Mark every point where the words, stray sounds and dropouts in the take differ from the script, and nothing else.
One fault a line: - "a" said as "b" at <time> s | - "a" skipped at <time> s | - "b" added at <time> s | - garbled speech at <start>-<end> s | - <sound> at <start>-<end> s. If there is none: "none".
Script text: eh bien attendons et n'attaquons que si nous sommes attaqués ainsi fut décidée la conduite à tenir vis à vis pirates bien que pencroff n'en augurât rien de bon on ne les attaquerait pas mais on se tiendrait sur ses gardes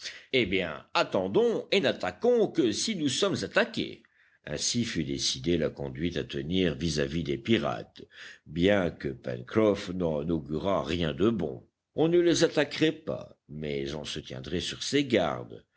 - "des" added at 7.2 s